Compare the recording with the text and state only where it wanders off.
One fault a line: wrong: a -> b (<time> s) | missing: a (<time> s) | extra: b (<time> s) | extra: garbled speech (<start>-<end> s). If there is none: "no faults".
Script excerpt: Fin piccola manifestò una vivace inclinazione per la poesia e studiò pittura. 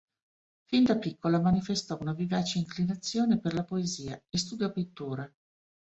extra: da (0.8 s)